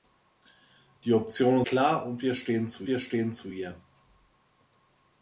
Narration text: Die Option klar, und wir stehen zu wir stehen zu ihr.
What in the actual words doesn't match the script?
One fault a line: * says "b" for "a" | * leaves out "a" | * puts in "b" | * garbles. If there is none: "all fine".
all fine